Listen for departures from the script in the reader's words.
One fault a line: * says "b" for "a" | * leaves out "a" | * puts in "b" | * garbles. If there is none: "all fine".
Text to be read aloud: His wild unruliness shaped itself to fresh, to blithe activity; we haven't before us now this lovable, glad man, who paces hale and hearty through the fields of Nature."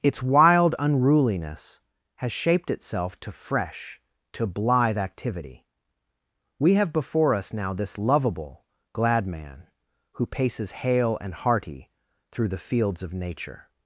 * says "Its" for "His"
* puts in "has"
* says "have" for "haven't"